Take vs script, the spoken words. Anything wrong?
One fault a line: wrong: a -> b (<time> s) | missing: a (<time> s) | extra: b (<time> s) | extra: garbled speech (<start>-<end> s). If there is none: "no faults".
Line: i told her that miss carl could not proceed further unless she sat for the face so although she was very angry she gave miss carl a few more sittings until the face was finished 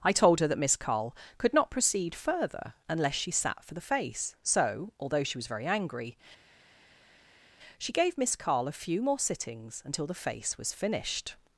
no faults